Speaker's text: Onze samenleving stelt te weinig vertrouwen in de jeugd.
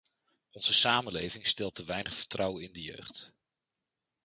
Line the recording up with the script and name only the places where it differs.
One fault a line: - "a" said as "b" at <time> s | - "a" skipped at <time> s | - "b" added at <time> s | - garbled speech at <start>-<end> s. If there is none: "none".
none